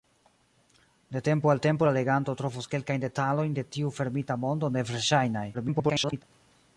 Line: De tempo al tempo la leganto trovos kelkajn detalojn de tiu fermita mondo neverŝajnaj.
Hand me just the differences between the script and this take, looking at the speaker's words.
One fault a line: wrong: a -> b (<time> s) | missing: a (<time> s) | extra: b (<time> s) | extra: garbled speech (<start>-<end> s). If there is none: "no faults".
extra: garbled speech (5.5-6.2 s)